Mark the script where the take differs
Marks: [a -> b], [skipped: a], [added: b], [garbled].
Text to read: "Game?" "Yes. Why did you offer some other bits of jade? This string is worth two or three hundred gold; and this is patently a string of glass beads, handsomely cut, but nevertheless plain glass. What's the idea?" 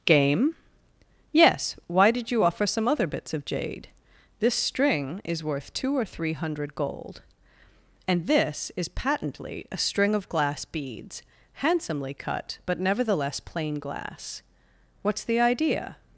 "Game?" "Yes. Why did you offer some other bits of jade? This string is worth two or three hundred gold; and this is patently a string of glass beads, handsomely cut, but nevertheless plain glass. What's the idea?"